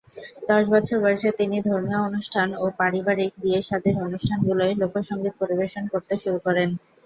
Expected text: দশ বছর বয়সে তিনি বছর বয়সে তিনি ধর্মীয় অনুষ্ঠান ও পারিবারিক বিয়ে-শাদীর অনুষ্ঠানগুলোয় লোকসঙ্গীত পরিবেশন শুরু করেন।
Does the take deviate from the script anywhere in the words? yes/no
yes